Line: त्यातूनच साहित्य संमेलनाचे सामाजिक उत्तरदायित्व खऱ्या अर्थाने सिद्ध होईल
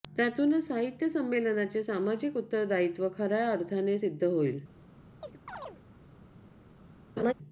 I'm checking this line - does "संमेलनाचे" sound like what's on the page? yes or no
yes